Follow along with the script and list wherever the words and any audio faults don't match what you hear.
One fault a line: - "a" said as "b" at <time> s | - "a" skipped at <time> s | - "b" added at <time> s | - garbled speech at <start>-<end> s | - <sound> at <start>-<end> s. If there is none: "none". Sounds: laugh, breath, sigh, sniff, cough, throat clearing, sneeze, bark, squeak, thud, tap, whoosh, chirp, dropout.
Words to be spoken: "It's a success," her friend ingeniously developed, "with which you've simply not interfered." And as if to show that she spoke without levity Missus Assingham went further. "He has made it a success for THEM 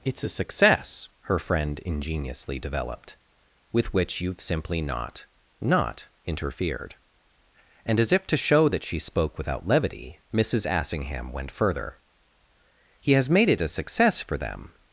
- "not" added at 5.6 s